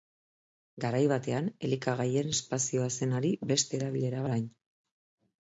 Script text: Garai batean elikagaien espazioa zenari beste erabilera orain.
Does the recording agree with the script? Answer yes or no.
yes